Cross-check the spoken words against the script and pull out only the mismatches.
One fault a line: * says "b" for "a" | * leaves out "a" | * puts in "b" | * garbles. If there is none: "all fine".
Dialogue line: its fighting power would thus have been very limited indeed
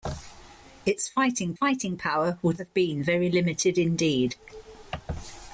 * puts in "fighting"
* leaves out "thus"